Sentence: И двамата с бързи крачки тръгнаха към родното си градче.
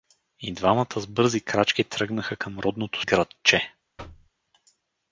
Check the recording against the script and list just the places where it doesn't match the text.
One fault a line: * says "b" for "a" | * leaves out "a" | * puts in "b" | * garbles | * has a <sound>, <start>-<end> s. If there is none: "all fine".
* leaves out "си"
* has a thud, 4.0-4.3 s